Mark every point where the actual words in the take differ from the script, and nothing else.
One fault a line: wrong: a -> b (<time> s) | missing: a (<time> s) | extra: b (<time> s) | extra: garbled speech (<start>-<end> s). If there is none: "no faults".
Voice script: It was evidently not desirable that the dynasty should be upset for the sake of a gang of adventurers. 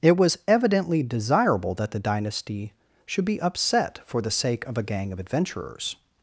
missing: not (1.0 s)